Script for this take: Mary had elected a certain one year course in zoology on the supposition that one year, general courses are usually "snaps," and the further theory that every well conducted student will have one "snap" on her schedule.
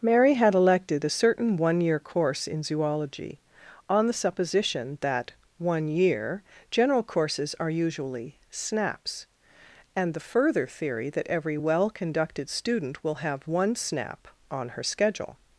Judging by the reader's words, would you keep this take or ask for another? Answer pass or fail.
pass